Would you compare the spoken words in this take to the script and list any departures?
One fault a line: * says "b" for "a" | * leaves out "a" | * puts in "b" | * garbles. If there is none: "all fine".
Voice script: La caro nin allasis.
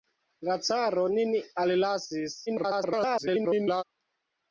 * garbles